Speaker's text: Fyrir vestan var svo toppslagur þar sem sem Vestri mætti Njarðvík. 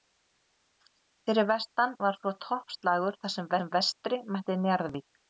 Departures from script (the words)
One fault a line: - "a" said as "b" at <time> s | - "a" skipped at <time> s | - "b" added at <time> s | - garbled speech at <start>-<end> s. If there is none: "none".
none